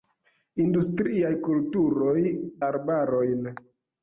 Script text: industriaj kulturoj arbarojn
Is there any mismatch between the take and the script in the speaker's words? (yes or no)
no